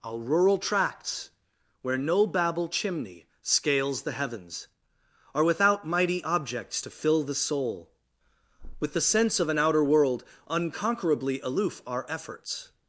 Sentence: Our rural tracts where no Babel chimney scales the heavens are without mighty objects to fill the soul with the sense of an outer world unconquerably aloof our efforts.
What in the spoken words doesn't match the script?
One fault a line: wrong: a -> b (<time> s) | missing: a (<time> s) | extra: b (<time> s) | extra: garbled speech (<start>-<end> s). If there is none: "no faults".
no faults